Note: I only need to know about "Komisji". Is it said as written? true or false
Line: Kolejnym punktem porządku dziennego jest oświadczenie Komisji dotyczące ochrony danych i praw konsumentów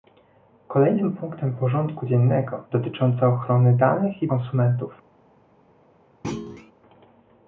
false